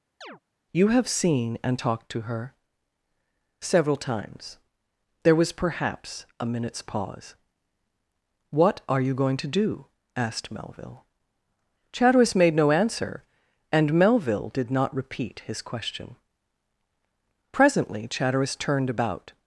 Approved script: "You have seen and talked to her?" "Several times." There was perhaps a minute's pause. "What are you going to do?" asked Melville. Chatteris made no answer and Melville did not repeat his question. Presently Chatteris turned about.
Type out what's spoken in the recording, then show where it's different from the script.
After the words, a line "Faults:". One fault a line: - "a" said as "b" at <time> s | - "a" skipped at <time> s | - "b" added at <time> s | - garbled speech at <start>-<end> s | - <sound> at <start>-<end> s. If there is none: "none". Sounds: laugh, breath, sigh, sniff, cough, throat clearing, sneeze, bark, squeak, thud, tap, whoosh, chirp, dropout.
"You have seen and talked to her?" "Several times." There was perhaps a minute's pause. "What are you going to do?" asked Melville. Chatteris made no answer and Melville did not repeat his question. Presently Chatteris turned about.
Faults:
- chirp at 0.2-0.4 s